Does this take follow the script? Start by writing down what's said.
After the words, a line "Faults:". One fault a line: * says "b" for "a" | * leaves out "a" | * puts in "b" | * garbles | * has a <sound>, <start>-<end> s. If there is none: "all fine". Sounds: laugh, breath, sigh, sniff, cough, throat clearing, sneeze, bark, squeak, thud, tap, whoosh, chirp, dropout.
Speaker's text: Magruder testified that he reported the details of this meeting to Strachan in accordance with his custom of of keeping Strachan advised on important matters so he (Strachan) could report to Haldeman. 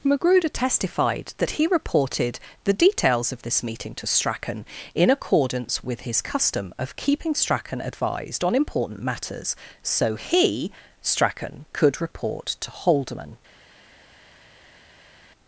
Magruder testified that he reported the details of this meeting to Strachan in accordance with his custom of keeping Strachan advised on important matters so he (Strachan) could report to Haldeman.
Faults:
* leaves out "of"